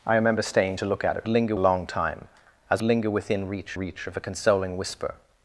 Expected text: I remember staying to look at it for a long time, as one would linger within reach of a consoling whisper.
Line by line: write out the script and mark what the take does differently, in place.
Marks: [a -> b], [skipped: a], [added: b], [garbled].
I remember staying to look at it [for -> linger] a long time, as [skipped: one would] linger within reach [added: reach] of a consoling whisper.